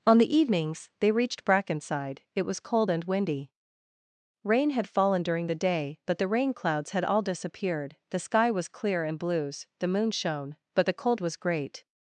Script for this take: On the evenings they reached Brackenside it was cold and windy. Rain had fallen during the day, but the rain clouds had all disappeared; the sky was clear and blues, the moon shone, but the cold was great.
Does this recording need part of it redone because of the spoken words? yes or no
no